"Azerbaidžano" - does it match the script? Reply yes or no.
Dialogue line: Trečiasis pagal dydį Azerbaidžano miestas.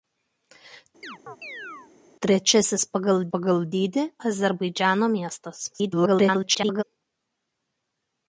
yes